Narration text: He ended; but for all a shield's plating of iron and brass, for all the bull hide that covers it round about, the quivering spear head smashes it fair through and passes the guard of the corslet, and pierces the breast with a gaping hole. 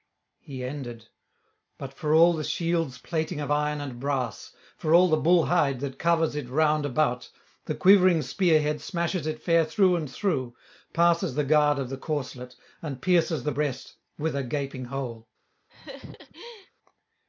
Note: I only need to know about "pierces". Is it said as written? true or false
true